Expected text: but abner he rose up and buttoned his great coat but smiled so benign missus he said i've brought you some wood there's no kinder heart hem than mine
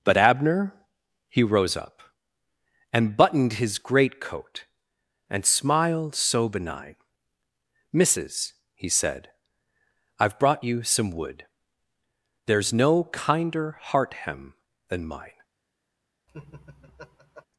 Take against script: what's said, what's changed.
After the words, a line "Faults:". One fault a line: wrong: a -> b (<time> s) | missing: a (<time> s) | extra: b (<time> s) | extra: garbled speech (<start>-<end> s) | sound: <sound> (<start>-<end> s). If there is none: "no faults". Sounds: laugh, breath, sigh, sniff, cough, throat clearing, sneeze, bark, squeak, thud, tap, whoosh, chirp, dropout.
but abner he rose up and buttoned his great coat and smiled so benign missus he said i've brought you some wood there's no kinder heart hem than mine
Faults:
wrong: but -> and (5.3 s)
sound: laugh (16.3-17.5 s)